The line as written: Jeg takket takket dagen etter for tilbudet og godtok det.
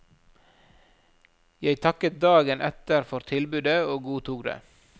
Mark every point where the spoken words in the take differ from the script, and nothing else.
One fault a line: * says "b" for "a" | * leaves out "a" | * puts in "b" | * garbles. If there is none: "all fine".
* leaves out "takket"